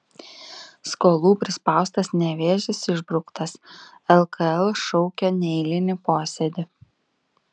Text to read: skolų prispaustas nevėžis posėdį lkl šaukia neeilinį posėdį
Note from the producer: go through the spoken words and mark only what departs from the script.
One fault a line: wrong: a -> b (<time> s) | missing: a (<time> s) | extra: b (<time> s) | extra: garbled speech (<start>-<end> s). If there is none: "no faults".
wrong: posėdį -> išbrauktas (2.9 s)